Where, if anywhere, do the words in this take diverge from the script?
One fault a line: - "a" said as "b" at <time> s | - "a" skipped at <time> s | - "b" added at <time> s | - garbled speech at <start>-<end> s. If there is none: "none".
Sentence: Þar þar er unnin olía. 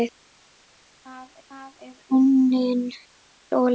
none